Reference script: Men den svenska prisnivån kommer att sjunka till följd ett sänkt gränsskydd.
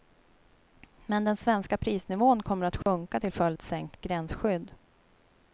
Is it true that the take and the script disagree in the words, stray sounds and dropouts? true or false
true